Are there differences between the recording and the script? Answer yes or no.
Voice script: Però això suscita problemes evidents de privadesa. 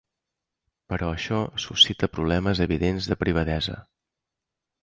no